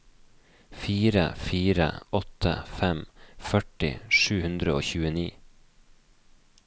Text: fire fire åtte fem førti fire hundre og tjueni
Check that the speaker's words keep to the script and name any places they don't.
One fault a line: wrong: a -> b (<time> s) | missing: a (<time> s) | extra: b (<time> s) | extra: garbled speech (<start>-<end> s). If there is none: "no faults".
wrong: fire -> sju (4.2 s)